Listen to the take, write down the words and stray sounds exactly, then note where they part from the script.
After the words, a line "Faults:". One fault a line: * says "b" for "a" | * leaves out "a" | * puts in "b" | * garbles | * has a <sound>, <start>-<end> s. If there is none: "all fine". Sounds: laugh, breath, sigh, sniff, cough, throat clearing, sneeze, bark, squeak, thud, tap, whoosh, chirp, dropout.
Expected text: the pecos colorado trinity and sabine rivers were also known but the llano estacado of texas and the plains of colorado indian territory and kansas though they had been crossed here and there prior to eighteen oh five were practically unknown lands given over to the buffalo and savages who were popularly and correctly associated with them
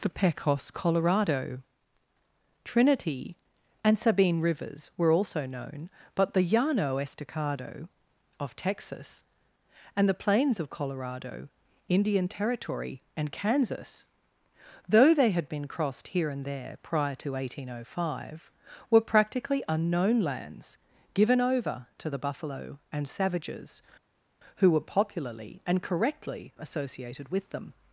the pecos colorado trinity and sabine rivers were also known but the llano estacado of texas and the plains of colorado indian territory and kansas though they had been crossed here and there prior to eighteen oh five were practically unknown lands given over to the buffalo and savages who were popularly and correctly associated with them
Faults:
all fine